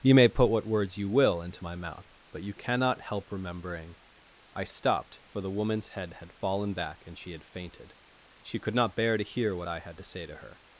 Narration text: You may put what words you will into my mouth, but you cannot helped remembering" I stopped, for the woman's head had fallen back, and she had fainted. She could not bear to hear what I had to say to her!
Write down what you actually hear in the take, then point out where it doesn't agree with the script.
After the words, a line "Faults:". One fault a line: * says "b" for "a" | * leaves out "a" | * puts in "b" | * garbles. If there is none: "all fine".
You may put what words you will into my mouth, but you cannot help remembering" I stopped, for the woman's head had fallen back, and she had fainted. She could not bear to hear what I had to say to her!
Faults:
* says "help" for "helped"